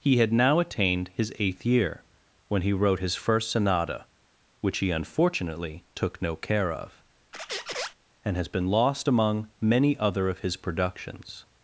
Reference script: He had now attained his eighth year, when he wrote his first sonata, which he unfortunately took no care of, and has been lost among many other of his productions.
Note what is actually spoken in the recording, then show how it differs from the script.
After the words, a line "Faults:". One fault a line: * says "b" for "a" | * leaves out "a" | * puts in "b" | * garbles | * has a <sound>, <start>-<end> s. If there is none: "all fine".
He had now attained his eighth year, when he wrote his first sonata, which he unfortunately took no care of, and has been lost among many other of his productions.
Faults:
* has a squeak, 7.3-7.9 s